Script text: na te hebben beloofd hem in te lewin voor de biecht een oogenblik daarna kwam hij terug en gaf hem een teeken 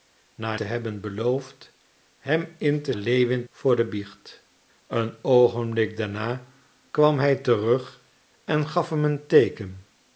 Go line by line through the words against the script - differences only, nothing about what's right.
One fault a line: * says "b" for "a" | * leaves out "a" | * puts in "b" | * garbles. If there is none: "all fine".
all fine